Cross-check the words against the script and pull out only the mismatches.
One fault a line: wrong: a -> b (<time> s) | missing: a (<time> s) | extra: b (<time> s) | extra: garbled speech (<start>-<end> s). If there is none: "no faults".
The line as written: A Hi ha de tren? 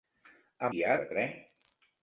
no faults